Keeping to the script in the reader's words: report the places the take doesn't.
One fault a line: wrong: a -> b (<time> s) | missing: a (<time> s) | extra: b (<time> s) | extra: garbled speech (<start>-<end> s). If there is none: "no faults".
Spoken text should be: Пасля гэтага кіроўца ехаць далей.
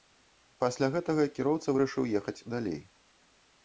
extra: вырашыў (1.7 s)